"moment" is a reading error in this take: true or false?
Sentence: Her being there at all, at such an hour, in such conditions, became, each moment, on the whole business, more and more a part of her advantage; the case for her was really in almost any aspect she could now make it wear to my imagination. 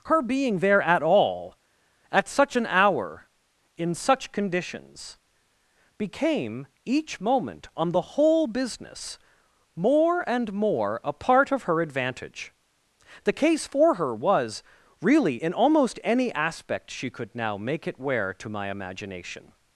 false